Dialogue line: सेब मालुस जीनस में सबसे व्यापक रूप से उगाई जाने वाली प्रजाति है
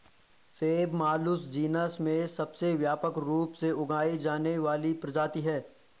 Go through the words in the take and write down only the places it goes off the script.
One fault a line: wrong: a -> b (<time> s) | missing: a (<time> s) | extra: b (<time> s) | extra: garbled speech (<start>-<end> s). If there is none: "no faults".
no faults